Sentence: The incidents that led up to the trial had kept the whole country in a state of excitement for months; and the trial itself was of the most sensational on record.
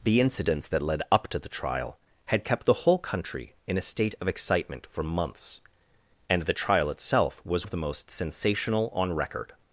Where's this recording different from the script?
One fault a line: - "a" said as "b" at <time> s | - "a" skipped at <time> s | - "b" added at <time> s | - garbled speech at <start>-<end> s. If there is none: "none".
none